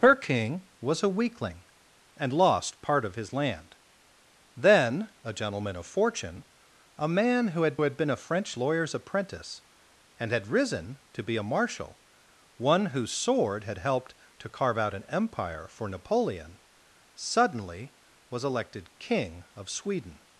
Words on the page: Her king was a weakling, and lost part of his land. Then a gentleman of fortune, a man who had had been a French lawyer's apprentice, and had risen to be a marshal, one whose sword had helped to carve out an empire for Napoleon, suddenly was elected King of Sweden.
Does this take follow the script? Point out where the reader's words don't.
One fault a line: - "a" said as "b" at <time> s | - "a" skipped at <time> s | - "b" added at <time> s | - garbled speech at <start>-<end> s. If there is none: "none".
none